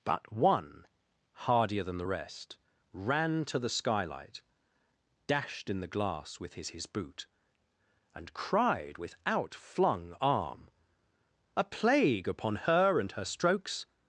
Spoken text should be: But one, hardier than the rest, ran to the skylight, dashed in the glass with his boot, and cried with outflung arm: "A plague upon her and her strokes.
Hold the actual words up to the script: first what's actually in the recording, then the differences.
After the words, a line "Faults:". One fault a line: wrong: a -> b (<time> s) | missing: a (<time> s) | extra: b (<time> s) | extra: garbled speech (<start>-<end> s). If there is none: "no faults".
But one, hardier than the rest, ran to the skylight, dashed in the glass with his his boot, and cried with outflung arm: "A plague upon her and her strokes.
Faults:
extra: his (6.7 s)